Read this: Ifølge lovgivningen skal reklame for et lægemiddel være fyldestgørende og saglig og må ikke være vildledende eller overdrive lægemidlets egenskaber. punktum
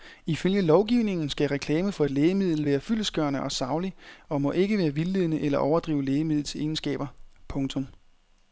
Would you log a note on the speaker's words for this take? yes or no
no